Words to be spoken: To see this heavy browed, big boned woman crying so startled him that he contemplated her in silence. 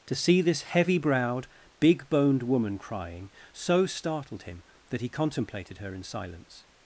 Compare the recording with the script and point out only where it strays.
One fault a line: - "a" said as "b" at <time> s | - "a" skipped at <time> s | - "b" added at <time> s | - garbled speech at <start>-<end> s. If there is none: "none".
none